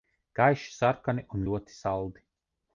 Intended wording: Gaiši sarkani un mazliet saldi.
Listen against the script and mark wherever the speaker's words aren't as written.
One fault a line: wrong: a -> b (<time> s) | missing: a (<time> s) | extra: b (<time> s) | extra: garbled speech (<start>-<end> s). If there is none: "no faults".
wrong: mazliet -> ļoti (1.5 s)